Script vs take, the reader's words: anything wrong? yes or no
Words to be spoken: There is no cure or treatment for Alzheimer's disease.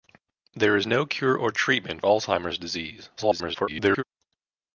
yes